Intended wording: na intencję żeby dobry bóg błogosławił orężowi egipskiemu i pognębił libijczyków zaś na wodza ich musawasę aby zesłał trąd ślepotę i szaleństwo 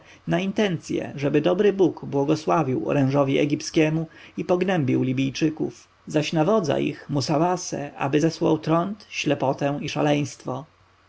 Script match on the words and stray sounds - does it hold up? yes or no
yes